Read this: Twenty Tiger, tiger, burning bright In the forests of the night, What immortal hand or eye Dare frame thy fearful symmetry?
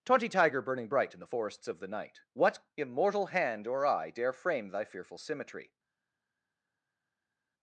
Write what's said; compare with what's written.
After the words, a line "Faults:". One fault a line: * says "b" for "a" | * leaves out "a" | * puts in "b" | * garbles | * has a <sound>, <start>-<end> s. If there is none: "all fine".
Twenty Tiger, burning bright In the forests of the night, What immortal hand or eye Dare frame thy fearful symmetry?
Faults:
* leaves out "tiger"